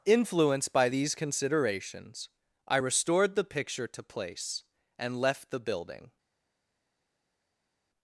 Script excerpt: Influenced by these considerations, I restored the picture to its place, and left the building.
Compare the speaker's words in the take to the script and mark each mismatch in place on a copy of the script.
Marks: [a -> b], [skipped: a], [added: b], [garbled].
Influenced by these considerations, I restored the picture to [skipped: its] place, and left the building.